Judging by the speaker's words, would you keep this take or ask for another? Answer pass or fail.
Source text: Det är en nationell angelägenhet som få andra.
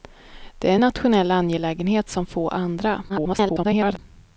fail